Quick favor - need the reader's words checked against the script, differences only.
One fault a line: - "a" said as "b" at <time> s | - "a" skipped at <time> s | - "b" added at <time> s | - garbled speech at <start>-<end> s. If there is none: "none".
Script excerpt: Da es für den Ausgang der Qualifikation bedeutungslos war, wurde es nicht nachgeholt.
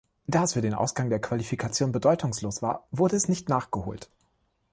none